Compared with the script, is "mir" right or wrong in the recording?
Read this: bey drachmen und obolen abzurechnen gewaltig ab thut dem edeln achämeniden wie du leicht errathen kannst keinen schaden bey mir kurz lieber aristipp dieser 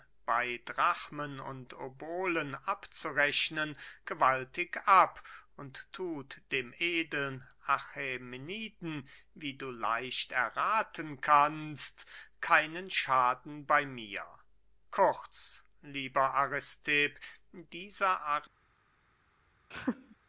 right